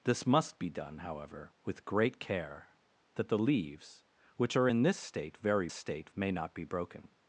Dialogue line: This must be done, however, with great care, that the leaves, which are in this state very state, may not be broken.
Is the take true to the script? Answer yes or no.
yes